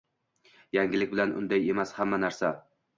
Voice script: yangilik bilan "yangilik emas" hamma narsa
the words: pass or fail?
fail